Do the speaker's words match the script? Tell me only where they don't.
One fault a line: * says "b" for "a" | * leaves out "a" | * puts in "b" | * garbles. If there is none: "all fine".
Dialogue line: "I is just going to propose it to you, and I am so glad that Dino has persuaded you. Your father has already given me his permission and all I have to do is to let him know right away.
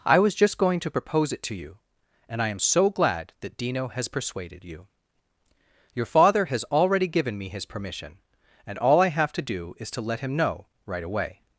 * says "was" for "is"